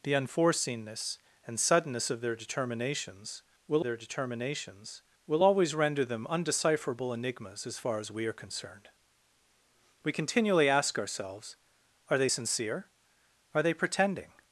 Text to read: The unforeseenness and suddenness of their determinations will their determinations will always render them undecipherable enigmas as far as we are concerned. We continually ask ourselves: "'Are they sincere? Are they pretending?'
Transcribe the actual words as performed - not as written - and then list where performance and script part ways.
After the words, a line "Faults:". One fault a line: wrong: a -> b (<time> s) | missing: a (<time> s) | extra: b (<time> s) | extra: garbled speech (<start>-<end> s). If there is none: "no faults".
The unforeseenness and suddenness of their determinations will their determinations will always render them undecipherable enigmas as far as we are concerned. We continually ask ourselves: "'Are they sincere? Are they pretending?'
Faults:
no faults